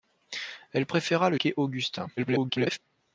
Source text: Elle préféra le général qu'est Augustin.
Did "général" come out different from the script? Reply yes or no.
yes